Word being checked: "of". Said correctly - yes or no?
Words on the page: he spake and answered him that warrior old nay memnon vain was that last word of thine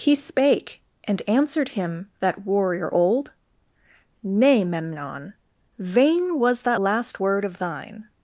yes